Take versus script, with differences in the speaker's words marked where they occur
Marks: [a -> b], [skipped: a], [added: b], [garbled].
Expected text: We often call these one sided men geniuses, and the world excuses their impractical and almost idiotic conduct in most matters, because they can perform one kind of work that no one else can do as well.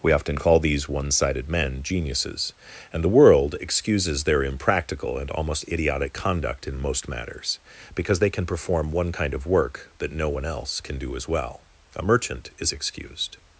We often call these one sided men geniuses, and the world excuses their impractical and almost idiotic conduct in most matters, because they can perform one kind of work that no one else can do as well. [added: A merchant is excused]